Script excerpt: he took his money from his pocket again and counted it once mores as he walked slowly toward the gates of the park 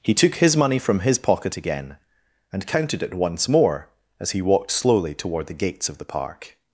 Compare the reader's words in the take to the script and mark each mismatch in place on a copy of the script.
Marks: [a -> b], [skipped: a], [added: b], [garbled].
he took his money from his pocket again and counted it once [mores -> more] as he walked slowly toward the gates of the park